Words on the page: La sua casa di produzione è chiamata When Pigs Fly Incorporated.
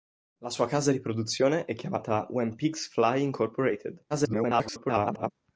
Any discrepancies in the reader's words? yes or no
yes